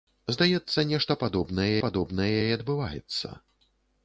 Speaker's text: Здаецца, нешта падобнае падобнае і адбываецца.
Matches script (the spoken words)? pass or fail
pass